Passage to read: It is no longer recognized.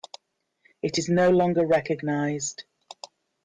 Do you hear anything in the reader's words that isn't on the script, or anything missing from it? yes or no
no